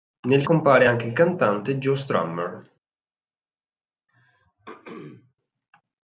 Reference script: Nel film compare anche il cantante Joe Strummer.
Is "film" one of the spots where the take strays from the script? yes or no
yes